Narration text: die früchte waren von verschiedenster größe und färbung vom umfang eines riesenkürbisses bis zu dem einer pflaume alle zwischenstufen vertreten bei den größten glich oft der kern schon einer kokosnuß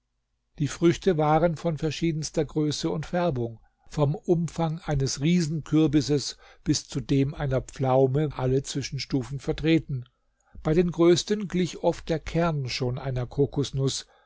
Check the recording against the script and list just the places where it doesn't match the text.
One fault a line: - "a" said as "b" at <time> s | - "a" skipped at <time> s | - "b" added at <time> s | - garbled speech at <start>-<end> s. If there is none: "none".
none